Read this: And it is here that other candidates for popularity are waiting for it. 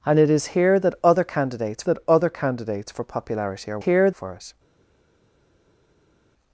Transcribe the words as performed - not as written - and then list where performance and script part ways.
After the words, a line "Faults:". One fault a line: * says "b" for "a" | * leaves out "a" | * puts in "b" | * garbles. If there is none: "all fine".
And it is here that other candidates that other candidates for popularity are here for it.
Faults:
* puts in "that other candidates"
* says "here" for "waiting"